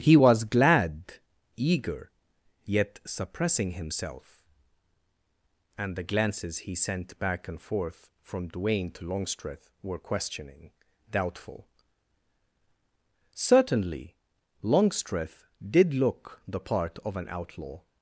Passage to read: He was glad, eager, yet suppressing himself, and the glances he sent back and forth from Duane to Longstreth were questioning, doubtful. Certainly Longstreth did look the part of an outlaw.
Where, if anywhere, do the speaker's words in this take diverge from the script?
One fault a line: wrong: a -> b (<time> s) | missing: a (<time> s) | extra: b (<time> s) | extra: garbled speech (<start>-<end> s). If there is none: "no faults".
no faults